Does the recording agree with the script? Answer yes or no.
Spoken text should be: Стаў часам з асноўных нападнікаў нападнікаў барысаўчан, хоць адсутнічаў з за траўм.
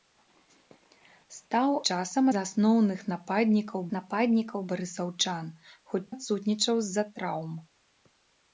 yes